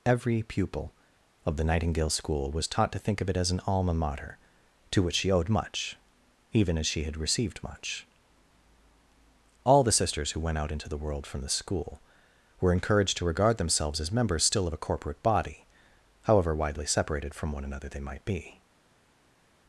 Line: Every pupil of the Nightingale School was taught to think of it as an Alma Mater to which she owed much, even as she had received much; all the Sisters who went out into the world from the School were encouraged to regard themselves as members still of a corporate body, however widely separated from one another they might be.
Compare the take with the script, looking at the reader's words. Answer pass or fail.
pass